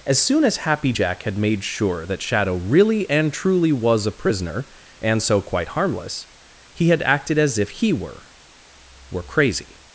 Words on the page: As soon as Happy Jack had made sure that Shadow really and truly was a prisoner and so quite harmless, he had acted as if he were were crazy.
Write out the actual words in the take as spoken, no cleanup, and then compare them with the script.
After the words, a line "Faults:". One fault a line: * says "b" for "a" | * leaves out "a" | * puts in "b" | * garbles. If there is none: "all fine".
As soon as Happy Jack had made sure that Shadow really and truly was a prisoner and so quite harmless, he had acted as if he were were crazy.
Faults:
all fine